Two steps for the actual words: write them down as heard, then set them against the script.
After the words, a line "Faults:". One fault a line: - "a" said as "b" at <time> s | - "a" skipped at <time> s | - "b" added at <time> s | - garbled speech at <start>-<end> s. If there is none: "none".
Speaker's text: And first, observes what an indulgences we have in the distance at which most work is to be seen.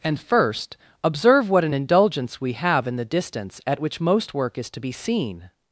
And first, observe what an indulgence we have in the distance at which most work is to be seen.
Faults:
- "observes" said as "observe" at 1.0 s
- "indulgences" said as "indulgence" at 1.7 s